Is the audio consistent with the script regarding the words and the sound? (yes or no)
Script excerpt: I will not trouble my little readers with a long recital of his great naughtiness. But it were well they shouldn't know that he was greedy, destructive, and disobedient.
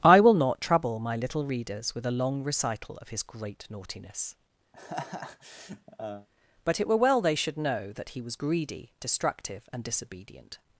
no